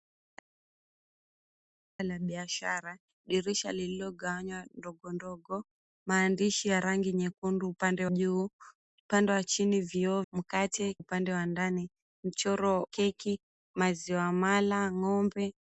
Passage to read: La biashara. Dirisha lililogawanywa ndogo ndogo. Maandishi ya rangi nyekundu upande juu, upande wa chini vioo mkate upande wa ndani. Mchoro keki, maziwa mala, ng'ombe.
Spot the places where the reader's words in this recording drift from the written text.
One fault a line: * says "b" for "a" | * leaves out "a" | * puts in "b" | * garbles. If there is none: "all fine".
all fine